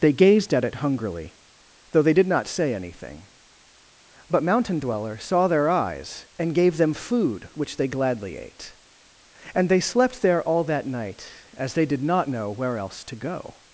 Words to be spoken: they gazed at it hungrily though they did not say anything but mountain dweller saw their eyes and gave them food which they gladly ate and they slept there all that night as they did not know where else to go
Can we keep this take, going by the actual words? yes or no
yes